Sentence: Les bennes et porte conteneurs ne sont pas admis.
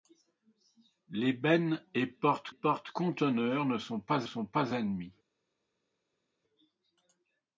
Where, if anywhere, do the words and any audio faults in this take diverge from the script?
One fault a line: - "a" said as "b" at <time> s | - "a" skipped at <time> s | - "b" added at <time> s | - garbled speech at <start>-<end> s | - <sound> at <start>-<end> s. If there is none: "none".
- "porte" added at 2.5 s
- "sont pas" added at 4.2 s